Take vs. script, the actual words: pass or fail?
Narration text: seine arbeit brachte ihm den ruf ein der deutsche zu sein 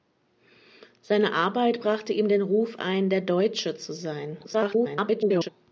fail